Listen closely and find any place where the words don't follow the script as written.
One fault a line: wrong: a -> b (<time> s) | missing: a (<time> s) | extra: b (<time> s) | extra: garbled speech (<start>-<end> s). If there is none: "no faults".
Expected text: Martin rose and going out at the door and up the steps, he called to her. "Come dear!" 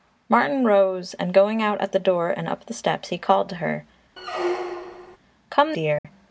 no faults